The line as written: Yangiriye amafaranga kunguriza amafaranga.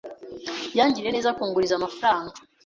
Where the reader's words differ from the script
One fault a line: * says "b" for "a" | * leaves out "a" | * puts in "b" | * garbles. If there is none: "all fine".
* says "neza" for "amafaranga"